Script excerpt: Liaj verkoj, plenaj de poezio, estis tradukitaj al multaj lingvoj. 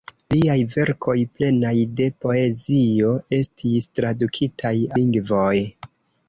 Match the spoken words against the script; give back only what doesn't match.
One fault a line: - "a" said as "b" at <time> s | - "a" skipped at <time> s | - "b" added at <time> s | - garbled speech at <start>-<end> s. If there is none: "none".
- "al multaj" skipped at 4.8 s